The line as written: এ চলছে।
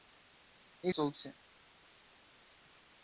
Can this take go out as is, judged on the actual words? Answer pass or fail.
pass